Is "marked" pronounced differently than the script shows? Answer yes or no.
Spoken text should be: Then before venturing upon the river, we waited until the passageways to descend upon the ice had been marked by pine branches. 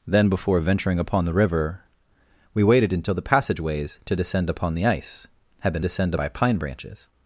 yes